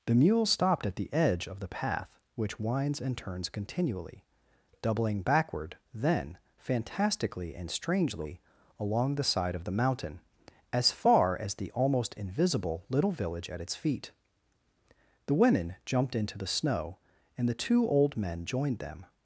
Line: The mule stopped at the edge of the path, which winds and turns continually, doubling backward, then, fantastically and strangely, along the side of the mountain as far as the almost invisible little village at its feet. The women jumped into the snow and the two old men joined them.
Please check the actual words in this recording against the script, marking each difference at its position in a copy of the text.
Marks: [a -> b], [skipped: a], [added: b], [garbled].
The mule stopped at the edge of the path, which winds and turns continually, doubling backward, then, fantastically and strangely, along the side of the mountain as far as the almost invisible little village at its feet. The women jumped into the snow and the two old men joined them.